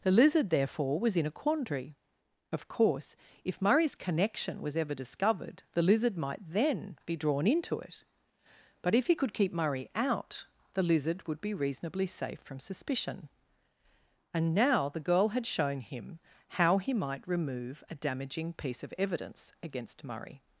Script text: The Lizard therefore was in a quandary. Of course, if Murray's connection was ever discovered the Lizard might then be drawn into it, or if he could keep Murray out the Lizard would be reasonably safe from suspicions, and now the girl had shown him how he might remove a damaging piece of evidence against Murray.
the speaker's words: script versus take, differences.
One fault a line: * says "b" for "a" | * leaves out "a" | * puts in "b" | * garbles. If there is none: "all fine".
* says "but" for "or"
* says "suspicion" for "suspicions"